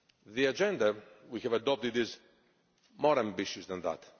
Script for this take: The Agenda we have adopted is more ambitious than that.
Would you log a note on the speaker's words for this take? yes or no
no